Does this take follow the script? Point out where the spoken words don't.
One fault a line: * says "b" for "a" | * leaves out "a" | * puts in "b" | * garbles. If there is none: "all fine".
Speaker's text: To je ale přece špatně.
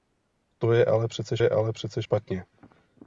* puts in "je ale přece"